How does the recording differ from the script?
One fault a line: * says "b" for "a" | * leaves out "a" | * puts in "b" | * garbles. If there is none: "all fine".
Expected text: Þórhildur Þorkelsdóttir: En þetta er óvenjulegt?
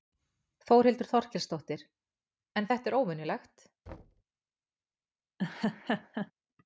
all fine